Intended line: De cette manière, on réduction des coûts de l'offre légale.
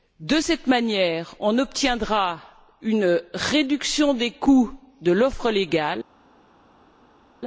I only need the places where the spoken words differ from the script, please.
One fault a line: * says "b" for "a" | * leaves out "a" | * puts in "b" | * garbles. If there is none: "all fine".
* puts in "obtiendra une"